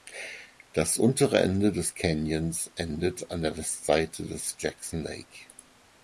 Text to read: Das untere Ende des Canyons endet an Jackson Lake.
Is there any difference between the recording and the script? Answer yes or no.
yes